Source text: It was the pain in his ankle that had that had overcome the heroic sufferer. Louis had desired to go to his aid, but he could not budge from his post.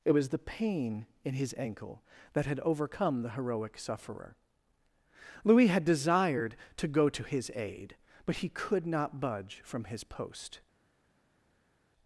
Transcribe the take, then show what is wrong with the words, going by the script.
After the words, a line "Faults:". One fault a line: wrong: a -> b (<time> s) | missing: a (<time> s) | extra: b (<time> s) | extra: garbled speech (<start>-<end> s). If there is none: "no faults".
It was the pain in his ankle that had overcome the heroic sufferer. Louis had desired to go to his aid, but he could not budge from his post.
Faults:
missing: that had (2.6 s)